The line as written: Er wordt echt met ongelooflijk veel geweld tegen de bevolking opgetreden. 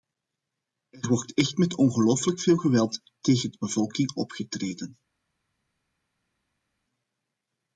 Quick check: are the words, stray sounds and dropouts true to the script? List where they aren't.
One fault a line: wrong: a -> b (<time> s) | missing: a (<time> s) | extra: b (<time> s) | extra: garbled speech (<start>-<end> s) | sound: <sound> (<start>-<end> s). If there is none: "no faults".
no faults